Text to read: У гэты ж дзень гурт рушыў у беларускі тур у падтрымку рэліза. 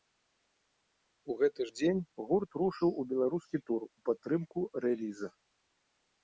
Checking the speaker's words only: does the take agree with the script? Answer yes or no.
yes